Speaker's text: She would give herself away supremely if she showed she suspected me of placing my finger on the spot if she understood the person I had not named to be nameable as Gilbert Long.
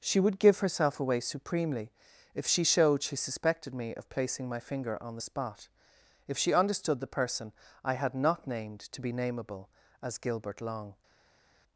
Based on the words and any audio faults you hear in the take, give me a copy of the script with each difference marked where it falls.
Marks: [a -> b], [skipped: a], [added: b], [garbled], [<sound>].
She would give herself away supremely if she showed she suspected me of placing my finger on the spot if she understood the person I had not named to be nameable as Gilbert Long.